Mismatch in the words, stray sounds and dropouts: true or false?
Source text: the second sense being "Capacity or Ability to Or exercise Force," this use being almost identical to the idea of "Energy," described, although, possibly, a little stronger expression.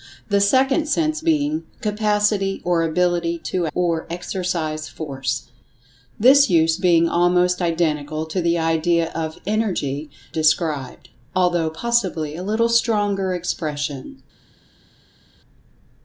false